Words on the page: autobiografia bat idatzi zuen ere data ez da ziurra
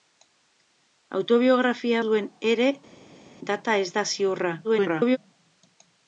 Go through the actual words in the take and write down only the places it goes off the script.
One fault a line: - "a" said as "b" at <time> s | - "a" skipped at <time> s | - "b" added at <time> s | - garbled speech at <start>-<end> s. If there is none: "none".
- "bat idatzi" skipped at 2.0 s
- garbled speech at 4.6-5.2 s